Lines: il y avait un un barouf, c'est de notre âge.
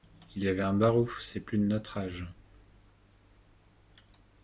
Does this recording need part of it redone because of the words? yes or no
yes